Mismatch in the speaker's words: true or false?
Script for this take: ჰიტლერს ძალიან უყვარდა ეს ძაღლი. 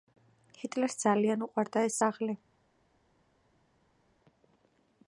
false